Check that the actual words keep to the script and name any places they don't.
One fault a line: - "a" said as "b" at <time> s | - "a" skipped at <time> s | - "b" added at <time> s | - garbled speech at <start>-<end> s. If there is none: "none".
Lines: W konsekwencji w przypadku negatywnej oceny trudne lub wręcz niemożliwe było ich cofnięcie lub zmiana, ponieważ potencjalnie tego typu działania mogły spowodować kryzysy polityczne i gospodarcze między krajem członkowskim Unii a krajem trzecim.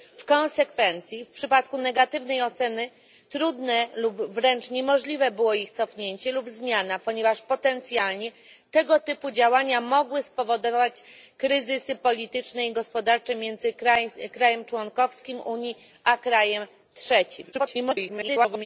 - garbled speech at 17.5-18.7 s